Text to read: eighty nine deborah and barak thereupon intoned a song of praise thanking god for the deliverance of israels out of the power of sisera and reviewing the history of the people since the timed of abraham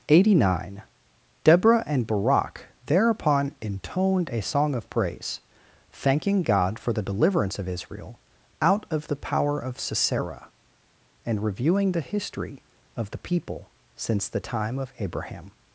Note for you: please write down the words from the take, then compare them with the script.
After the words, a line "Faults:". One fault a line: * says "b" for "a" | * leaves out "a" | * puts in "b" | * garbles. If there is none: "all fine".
eighty nine deborah and barak thereupon intoned a song of praise thanking god for the deliverance of israel out of the power of sisera and reviewing the history of the people since the time of abraham
Faults:
* says "israel" for "israels"
* says "time" for "timed"